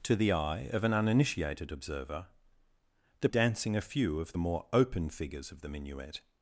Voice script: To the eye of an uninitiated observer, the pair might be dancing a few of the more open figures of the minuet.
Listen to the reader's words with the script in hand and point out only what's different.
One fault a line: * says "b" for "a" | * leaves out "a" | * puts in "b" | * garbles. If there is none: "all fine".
* leaves out "pair might be"